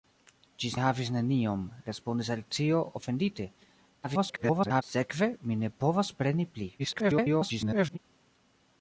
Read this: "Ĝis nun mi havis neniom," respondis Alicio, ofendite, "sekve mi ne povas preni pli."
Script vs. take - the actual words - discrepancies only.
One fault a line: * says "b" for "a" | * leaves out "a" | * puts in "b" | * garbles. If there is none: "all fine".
* leaves out "nun mi"
* garbles
* garbles